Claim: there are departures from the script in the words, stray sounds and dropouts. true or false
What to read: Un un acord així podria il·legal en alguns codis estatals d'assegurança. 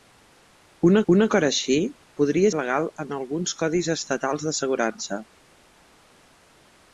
false